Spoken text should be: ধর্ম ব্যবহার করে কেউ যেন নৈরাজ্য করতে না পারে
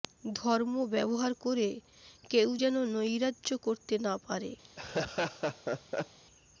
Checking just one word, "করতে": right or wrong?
right